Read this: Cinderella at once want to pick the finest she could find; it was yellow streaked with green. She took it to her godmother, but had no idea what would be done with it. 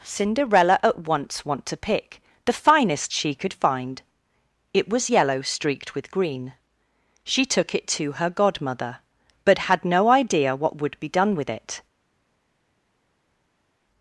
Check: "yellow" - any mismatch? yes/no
no